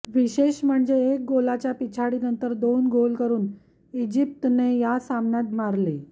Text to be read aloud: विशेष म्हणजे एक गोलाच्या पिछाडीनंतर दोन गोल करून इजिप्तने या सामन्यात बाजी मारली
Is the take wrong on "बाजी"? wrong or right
wrong